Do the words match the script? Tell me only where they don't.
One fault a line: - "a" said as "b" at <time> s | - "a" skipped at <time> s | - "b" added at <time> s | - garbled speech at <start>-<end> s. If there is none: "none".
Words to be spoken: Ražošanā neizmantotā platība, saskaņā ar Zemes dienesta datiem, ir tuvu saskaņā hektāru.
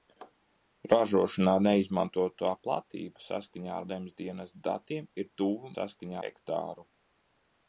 none